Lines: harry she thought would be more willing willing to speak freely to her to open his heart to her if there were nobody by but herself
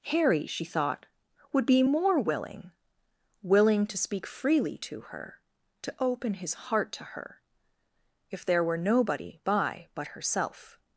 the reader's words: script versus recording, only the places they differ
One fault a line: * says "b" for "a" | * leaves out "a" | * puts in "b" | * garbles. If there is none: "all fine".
all fine